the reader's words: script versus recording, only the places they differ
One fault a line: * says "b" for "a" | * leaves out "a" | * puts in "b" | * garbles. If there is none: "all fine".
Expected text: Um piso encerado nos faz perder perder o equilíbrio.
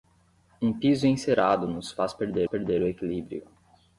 all fine